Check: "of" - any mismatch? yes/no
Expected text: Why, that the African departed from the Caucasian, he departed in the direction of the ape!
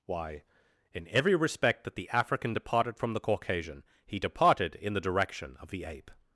no